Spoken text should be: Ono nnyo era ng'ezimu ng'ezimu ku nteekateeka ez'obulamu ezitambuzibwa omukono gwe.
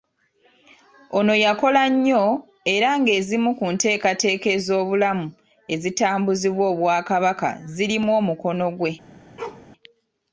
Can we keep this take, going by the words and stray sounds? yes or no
no